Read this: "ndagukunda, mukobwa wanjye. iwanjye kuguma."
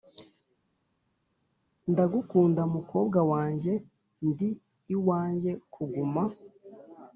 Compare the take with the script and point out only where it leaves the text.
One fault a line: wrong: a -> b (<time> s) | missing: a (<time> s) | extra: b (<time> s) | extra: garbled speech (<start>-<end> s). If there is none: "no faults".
extra: ndi (4.3 s)